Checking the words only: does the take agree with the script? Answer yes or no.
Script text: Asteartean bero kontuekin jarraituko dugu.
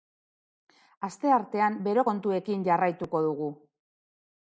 yes